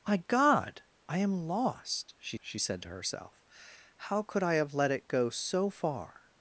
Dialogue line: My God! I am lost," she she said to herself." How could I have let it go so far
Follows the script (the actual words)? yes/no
yes